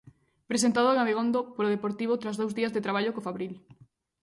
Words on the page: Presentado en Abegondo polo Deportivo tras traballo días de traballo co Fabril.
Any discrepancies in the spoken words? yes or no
yes